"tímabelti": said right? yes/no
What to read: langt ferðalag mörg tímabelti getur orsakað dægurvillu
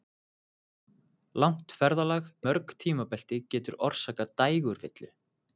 yes